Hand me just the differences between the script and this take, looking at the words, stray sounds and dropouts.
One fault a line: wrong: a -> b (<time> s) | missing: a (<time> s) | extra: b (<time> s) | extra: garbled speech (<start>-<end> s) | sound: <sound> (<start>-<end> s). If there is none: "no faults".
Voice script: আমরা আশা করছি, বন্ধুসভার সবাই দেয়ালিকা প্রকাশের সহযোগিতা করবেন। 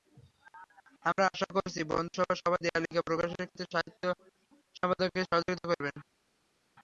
extra: ক্ষেত্রে সাহিত্য সম্পাদককে (3.4 s)